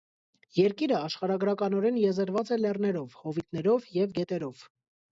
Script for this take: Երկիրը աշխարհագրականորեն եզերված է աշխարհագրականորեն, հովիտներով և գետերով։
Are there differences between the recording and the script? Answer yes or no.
yes